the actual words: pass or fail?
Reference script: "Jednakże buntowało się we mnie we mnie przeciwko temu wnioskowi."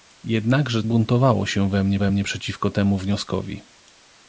pass